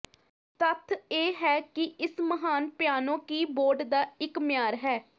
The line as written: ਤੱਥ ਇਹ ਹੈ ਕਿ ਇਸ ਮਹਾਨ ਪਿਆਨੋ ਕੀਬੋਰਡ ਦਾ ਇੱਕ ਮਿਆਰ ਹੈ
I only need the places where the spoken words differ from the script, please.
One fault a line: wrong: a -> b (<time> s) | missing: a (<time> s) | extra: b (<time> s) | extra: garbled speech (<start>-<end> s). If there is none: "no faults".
no faults